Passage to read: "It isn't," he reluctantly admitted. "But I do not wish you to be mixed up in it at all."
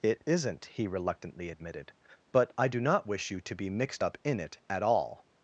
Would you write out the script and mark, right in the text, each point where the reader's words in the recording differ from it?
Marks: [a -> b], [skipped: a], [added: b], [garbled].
"It isn't," he reluctantly admitted. "But I do not wish you to be mixed up in it at all."